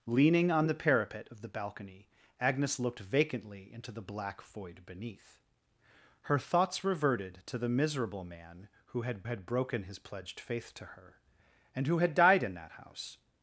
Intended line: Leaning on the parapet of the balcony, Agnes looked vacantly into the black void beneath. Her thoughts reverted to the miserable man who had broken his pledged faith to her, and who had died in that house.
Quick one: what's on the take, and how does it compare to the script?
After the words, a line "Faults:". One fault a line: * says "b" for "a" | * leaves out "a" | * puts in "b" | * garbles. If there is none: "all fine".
Leaning on the parapet of the balcony, Agnes looked vacantly into the black void beneath. Her thoughts reverted to the miserable man who had had broken his pledged faith to her, and who had died in that house.
Faults:
* puts in "had"